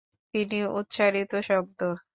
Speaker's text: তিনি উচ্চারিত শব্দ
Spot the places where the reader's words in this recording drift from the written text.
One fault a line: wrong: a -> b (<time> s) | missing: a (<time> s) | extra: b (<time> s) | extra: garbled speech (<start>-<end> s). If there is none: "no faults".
no faults